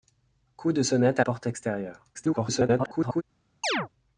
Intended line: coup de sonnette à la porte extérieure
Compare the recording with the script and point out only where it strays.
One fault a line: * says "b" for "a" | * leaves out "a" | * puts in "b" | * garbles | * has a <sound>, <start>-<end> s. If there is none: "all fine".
* leaves out "la"
* garbles
* has a chirp, 3.6-3.9 s